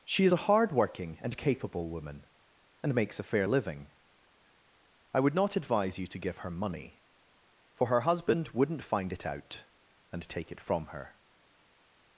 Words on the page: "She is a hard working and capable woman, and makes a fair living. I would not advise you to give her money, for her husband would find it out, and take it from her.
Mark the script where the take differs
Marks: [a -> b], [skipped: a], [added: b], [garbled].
"She is a hard working and capable woman, and makes a fair living. I would not advise you to give her money, for her husband [would -> wouldn't] find it out, and take it from her.